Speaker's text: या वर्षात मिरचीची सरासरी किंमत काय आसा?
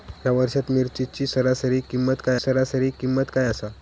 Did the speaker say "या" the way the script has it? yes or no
yes